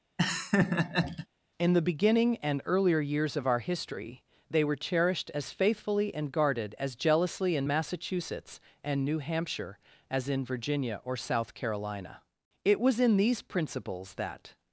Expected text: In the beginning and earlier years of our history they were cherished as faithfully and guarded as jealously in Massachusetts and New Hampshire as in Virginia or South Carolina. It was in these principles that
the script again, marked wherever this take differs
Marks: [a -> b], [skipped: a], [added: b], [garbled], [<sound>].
[laugh] In the beginning and earlier years of our history they were cherished as faithfully and guarded as jealously in Massachusetts and New Hampshire as in Virginia or South Carolina. It was in these principles that